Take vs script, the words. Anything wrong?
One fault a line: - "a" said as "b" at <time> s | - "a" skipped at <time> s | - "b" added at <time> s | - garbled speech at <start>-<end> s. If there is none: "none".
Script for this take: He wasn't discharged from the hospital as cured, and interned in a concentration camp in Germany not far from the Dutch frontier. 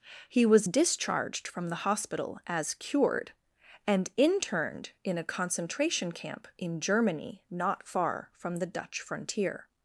- "wasn't" said as "was" at 0.5 s